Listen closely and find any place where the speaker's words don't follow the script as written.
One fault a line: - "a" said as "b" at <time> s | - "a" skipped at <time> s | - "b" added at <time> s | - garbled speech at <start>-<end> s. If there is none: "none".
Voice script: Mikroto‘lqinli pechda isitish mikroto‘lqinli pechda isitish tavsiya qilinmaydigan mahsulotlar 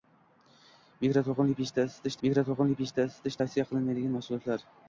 none